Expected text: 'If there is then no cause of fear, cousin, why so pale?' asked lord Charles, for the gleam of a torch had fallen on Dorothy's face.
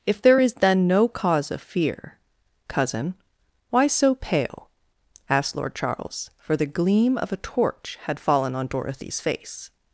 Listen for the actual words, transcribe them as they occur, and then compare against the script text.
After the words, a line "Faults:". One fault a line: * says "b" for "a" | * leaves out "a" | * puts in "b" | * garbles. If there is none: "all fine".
'If there is then no cause of fear, cousin, why so pale?' asked lord Charles, for the gleam of a torch had fallen on Dorothy's face.
Faults:
all fine